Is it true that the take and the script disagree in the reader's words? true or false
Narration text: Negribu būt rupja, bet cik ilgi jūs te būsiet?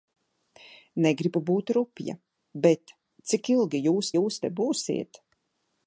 true